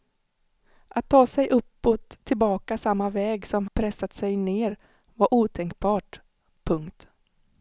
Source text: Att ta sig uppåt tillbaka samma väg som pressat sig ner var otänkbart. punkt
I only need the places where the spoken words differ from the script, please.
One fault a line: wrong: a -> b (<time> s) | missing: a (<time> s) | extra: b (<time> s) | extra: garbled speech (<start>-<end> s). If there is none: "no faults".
no faults